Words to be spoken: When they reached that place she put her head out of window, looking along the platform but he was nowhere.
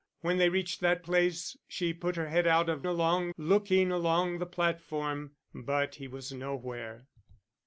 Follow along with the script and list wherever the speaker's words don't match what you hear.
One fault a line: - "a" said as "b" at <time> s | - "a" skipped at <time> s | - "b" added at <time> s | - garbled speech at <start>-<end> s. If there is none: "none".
- "window" said as "along" at 2.9 s